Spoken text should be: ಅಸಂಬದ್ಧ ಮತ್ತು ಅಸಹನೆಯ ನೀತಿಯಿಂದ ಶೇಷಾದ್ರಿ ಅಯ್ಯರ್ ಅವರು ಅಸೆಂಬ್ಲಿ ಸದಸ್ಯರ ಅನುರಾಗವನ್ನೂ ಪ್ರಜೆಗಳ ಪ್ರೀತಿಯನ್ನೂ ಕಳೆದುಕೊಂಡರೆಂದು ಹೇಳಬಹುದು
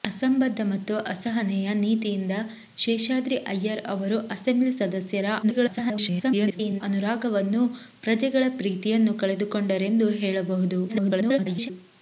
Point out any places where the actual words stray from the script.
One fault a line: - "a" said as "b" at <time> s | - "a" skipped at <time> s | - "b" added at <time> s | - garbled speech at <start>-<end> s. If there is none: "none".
- garbled speech at 5.4-6.8 s
- garbled speech at 10.9-11.7 s